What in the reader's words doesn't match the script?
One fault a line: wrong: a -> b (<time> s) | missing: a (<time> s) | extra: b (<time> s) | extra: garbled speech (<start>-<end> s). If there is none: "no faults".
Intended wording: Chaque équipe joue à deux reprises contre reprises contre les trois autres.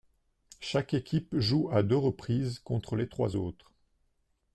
missing: reprises contre (3.0 s)